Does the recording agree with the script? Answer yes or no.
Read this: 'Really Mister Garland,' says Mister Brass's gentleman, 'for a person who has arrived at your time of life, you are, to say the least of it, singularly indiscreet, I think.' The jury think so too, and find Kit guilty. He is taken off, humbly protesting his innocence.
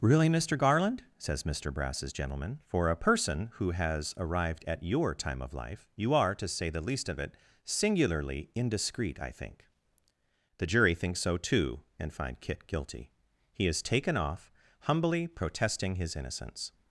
yes